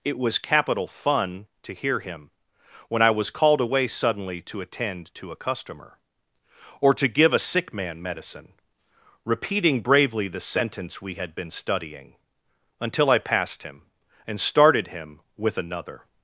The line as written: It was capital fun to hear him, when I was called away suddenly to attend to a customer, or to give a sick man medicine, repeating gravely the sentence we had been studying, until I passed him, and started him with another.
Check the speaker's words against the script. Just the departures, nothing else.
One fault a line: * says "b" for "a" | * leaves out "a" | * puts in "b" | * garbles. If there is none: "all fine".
* says "bravely" for "gravely"